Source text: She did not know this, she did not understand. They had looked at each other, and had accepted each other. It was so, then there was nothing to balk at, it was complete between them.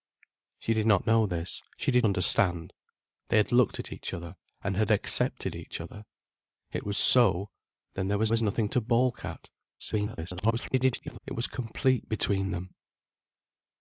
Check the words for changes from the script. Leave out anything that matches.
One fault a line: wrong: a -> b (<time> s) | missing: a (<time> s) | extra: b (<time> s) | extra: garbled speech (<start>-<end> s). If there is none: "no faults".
missing: not (2.1 s)
extra: was (8.3 s)
extra: garbled speech (9.8-11.2 s)